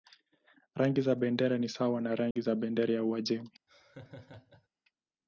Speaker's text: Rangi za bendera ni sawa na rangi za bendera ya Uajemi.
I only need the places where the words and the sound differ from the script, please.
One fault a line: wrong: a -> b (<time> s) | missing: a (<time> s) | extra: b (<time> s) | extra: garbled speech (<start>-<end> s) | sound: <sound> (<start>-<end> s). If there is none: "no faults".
sound: dropout (2.3-2.4 s)
sound: laugh (3.7-4.7 s)